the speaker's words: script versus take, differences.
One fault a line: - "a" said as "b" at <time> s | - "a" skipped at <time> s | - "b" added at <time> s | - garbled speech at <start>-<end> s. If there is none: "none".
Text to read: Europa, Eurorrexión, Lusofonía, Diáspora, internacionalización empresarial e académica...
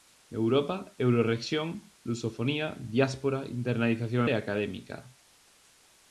- "empresarial" skipped at 4.2 s